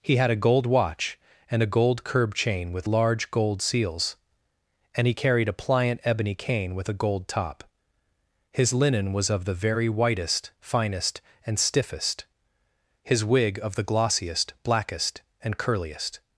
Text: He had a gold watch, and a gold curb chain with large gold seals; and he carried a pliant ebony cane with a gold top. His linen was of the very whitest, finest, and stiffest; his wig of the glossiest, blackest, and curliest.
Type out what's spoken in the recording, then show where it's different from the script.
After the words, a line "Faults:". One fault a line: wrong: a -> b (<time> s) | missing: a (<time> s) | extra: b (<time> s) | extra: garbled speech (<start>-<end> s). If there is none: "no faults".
He had a gold watch, and a gold curb chain with large gold seals; and he carried a pliant ebony cane with a gold top. His linen was of the very whitest, finest, and stiffest; his wig of the glossiest, blackest, and curliest.
Faults:
no faults